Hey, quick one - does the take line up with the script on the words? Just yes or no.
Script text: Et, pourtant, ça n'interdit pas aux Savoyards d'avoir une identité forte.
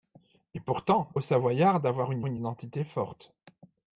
no